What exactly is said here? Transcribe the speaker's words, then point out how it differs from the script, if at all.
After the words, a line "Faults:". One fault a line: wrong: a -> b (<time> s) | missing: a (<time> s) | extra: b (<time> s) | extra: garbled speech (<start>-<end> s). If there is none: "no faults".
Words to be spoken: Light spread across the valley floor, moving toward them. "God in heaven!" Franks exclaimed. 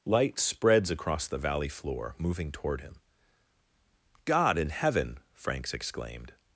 Light spreads across the valley floor, moving toward him. "God in heaven!" Franks exclaimed.
Faults:
wrong: spread -> spreads (0.4 s)
wrong: them -> him (2.8 s)